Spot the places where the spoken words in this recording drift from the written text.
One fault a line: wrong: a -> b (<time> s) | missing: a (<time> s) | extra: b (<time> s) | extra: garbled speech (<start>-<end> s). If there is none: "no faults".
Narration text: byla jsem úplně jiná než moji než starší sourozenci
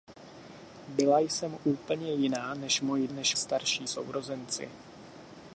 no faults